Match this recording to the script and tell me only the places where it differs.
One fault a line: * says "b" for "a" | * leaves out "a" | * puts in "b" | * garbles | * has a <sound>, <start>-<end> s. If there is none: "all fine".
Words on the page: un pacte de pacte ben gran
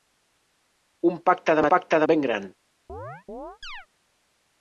* has a chirp, 2.9-3.9 s